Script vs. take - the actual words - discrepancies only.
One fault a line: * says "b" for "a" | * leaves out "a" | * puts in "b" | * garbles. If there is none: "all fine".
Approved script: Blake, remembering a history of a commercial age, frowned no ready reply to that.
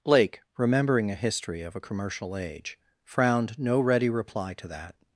all fine